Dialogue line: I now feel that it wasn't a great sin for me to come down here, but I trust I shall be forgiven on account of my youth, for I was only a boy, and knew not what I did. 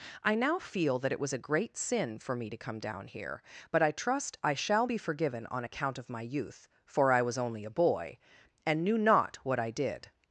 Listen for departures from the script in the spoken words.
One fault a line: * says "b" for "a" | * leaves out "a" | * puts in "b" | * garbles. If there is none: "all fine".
* says "was" for "wasn't"